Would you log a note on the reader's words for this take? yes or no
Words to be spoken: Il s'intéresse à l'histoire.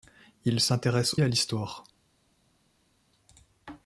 no